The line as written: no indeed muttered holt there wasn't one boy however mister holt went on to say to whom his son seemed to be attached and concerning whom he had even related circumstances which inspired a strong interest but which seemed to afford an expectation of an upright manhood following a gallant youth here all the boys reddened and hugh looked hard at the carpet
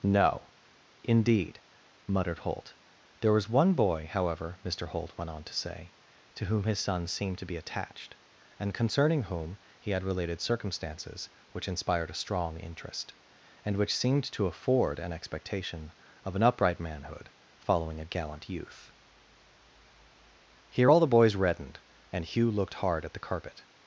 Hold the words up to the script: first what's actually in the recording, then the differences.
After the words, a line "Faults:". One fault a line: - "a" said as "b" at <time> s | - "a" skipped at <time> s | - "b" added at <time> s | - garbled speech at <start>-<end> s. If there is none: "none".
no indeed muttered holt there was one boy however mister holt went on to say to whom his son seemed to be attached and concerning whom he had related circumstances which inspired a strong interest and which seemed to afford an expectation of an upright manhood following a gallant youth here all the boys reddened and hugh looked hard at the carpet
Faults:
- "wasn't" said as "was" at 3.3 s
- "even" skipped at 10.0 s
- "but" said as "and" at 13.6 s